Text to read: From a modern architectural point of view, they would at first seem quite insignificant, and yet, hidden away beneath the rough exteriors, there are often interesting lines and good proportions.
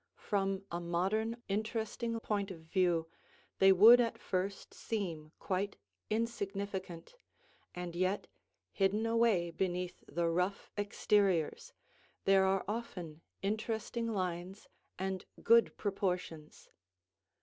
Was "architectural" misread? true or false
true